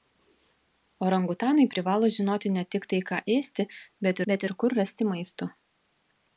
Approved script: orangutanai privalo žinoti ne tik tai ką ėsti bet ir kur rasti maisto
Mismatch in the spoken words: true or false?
true